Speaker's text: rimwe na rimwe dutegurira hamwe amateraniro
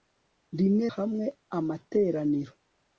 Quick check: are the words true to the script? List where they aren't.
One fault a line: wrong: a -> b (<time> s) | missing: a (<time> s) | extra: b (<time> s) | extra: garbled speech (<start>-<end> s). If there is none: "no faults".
missing: na rimwe dutegurira (0.9 s)